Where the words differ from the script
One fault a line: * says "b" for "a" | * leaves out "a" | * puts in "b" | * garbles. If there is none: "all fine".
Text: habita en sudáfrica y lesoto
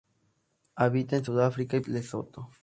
all fine